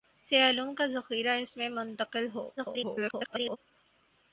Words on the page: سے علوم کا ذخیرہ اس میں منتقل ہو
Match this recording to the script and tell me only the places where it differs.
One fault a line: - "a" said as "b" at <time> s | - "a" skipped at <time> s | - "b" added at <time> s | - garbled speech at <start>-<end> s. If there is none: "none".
- garbled speech at 2.6-3.6 s